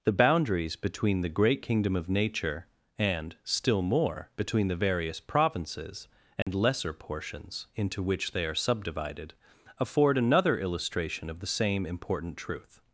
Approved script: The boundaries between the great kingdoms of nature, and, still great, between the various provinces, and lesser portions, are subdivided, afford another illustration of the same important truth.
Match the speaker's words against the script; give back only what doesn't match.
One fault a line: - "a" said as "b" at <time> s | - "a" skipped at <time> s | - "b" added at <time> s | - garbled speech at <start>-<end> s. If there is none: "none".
- "kingdoms" said as "kingdom" at 1.6 s
- "great" said as "more" at 3.8 s
- "into which they" added at 7.8 s